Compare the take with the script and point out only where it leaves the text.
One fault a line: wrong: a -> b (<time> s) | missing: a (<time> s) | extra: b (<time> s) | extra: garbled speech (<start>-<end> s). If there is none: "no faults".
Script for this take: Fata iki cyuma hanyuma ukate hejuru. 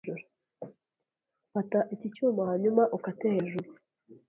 no faults